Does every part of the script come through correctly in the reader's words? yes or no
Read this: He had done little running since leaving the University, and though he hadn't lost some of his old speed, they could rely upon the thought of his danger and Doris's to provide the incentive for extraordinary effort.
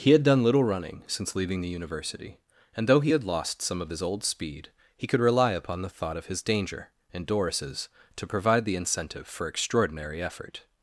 no